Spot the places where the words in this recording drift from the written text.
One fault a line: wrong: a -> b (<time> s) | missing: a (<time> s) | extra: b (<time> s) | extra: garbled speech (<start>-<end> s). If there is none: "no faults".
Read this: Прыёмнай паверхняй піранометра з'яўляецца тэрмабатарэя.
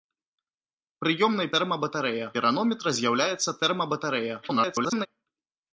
wrong: паверхняй -> тэрмабатарэя (1.5 s)
extra: garbled speech (4.4-5.1 s)